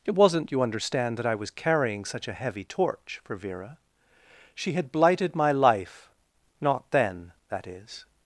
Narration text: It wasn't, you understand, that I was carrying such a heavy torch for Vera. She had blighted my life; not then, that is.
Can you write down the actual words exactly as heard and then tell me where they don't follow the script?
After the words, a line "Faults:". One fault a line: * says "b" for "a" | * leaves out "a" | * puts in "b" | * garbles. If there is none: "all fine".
It wasn't, you understand, that I was carrying such a heavy torch for Vera. She had blighted my life; not then, that is.
Faults:
all fine